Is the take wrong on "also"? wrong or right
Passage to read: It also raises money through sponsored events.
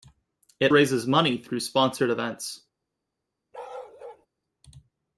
wrong